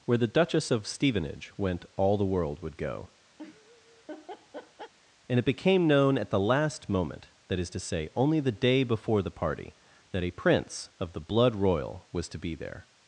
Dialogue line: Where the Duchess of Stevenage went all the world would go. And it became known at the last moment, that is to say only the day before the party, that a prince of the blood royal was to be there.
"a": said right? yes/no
yes